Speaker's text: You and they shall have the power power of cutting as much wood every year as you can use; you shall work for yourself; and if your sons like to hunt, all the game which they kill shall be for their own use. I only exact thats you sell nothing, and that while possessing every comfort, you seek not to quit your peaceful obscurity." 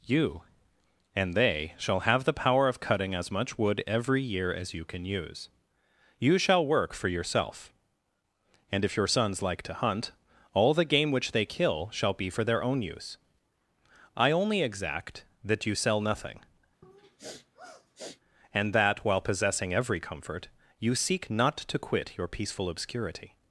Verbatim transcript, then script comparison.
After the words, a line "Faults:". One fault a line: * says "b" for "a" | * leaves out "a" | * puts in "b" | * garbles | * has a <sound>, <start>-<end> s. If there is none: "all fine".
You and they shall have the power of cutting as much wood every year as you can use; you shall work for yourself; and if your sons like to hunt, all the game which they kill shall be for their own use. I only exact that you sell nothing, and that while possessing every comfort, you seek not to quit your peaceful obscurity."
Faults:
* leaves out "power"
* says "that" for "thats"
* has a sniff, 16.8-18.2 s